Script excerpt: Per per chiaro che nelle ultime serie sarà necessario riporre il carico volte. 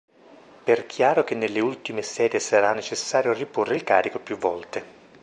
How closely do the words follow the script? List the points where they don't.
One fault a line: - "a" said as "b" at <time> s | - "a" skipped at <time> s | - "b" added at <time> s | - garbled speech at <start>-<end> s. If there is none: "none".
- "per" skipped at 0.9 s
- "più" added at 4.2 s